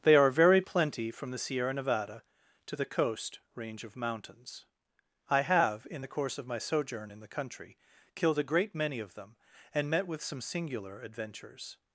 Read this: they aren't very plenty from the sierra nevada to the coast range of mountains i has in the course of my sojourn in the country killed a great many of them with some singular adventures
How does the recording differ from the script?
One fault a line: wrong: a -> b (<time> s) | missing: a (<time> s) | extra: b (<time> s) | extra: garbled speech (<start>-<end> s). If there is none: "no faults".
wrong: aren't -> are (0.1 s)
wrong: has -> have (5.4 s)
extra: and met (9.7 s)